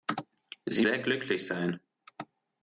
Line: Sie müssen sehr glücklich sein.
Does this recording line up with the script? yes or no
no